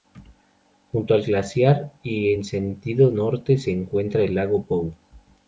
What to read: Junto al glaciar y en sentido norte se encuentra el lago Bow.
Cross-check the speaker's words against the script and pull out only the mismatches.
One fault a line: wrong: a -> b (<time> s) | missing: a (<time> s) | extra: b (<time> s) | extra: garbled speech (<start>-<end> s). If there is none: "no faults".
no faults